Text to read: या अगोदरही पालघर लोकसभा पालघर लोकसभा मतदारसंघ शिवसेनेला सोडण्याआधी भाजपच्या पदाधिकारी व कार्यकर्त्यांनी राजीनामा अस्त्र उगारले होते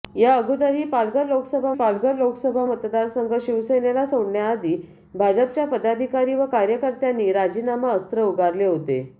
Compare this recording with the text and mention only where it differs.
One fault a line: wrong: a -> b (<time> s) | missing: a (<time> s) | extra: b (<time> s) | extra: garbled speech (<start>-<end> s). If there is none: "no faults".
no faults